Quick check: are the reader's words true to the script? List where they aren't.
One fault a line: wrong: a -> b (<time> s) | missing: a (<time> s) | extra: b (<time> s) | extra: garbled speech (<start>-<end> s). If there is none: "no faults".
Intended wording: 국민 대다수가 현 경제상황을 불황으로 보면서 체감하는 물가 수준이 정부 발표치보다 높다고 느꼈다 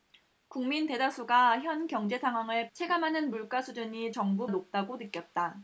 missing: 불황으로 보면서 (2.7 s)
missing: 발표치보다 (4.5 s)